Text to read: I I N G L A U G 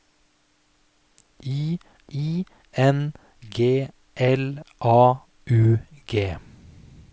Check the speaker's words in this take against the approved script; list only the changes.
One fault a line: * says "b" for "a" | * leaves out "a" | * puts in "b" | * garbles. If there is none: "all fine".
all fine